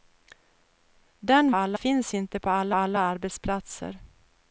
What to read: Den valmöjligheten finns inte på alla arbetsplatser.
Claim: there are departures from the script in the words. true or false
true